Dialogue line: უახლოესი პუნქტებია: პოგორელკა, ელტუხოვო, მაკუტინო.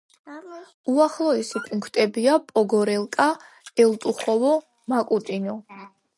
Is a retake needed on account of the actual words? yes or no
no